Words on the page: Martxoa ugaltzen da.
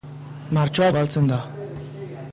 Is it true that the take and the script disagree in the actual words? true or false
false